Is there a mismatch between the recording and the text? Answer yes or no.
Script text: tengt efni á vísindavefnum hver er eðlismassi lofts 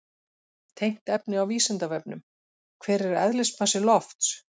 no